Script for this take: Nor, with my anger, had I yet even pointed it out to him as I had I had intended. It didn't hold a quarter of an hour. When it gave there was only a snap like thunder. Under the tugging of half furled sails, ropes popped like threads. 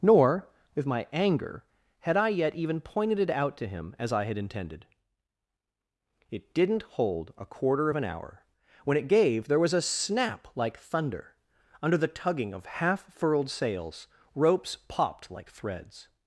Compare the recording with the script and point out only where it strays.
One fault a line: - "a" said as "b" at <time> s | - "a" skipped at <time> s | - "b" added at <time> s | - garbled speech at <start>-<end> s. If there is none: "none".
- "I had" skipped at 4.4 s
- "only" skipped at 9.7 s